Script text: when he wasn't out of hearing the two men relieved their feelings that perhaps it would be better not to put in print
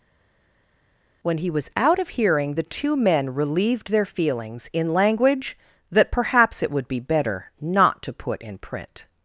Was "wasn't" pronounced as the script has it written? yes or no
no